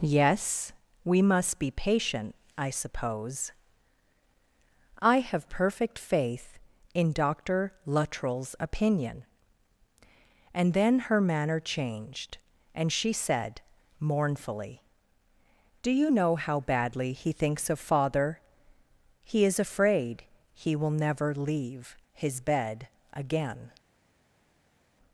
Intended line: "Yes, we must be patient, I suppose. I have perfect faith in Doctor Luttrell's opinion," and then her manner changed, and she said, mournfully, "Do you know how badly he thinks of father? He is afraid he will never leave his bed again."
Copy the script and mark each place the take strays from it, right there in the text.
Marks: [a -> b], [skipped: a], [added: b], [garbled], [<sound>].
"Yes, we must be patient, I suppose. I have perfect faith in Doctor Luttrell's opinion," and then her manner changed, and she said, mournfully, "Do you know how badly he thinks of father? He is afraid he will never leave his bed again."